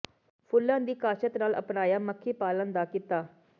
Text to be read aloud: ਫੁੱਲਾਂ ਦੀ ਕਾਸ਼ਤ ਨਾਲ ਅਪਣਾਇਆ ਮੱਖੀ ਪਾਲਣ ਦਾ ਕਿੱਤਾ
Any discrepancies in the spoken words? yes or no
no